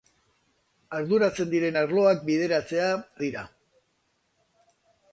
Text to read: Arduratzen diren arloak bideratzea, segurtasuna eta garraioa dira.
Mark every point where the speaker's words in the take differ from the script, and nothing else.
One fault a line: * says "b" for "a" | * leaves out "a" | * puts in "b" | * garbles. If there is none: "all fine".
* leaves out "segurtasuna eta garraioa"